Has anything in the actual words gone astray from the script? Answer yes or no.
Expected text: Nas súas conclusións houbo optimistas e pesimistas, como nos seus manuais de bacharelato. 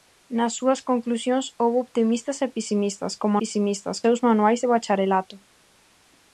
yes